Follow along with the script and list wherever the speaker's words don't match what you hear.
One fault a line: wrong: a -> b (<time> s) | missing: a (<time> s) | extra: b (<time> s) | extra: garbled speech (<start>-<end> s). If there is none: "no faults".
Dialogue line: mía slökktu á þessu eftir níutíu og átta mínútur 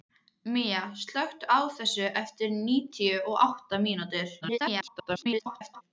extra: garbled speech (4.4-5.8 s)